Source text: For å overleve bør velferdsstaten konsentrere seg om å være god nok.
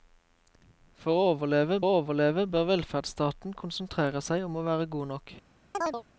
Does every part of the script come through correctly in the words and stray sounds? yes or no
no